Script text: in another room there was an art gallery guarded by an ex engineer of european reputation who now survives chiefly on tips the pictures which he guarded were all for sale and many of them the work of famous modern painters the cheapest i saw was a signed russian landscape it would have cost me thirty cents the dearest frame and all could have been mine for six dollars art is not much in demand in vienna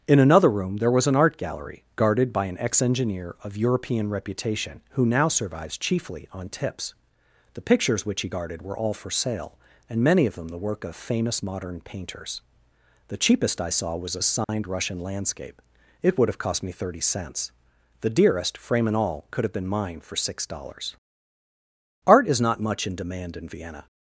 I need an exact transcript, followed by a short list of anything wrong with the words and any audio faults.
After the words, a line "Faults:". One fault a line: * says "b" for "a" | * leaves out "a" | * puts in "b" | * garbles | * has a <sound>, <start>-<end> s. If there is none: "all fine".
in another room there was an art gallery guarded by an ex engineer of european reputation who now survives chiefly on tips the pictures which he guarded were all for sale and many of them the work of famous modern painters the cheapest i saw was a signed russian landscape it would have cost me thirty cents the dearest frame and all could have been mine for six dollars art is not much in demand in vienna
Faults:
* has a dropout, 14.4-14.5 s